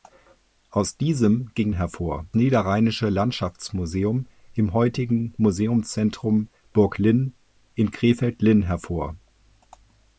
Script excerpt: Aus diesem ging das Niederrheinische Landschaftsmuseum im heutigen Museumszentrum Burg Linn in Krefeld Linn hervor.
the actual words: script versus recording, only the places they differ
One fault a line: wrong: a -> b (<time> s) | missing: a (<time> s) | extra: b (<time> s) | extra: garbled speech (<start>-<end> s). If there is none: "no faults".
wrong: das -> hervor (1.7 s)